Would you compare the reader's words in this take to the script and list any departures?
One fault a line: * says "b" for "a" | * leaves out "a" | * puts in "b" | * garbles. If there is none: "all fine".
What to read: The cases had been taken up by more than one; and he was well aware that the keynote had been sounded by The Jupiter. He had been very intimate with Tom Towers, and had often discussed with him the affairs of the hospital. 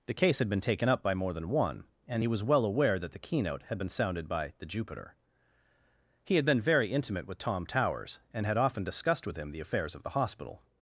* says "case" for "cases"